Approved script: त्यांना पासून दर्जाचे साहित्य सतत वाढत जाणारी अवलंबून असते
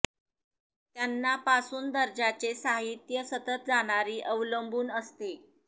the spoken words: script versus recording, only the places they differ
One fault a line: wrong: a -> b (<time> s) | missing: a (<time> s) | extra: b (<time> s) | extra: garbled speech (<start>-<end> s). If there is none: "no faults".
missing: वाढत (3.7 s)